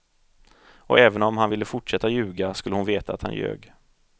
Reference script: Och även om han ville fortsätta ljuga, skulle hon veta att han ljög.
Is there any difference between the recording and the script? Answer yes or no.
no